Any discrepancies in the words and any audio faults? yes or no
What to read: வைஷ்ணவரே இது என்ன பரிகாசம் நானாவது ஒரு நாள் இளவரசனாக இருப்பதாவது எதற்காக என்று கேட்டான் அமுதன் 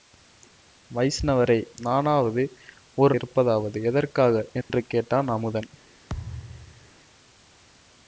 yes